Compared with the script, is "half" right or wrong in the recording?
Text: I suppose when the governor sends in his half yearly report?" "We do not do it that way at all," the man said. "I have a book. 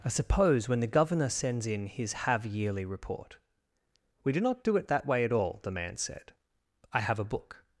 wrong